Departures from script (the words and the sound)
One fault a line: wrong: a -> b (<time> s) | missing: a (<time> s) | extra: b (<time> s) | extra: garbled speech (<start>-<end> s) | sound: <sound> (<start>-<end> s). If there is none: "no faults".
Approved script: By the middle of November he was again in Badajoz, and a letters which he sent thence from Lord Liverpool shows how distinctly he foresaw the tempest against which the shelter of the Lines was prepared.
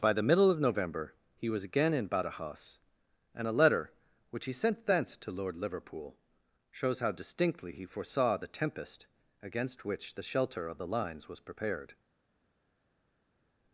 wrong: letters -> letter (3.5 s)
wrong: from -> to (5.2 s)